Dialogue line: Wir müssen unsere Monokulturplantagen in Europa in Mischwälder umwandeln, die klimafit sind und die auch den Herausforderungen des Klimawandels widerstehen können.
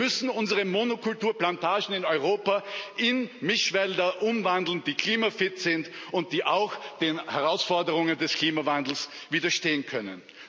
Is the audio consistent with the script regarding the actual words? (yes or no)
yes